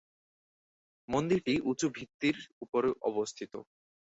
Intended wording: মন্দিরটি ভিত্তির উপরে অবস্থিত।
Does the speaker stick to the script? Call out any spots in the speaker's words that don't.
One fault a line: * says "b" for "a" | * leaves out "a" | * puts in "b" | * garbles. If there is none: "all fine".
* puts in "উঁচু"